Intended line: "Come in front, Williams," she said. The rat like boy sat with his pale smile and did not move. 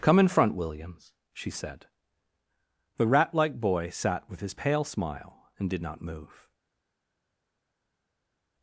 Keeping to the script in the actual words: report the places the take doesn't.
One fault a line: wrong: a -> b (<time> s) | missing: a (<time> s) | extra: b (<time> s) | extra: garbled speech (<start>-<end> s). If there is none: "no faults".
no faults